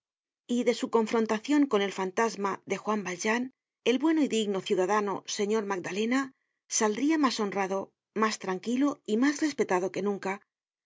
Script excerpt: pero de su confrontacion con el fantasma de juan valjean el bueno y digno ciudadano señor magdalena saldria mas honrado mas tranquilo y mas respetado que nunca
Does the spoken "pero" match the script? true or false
false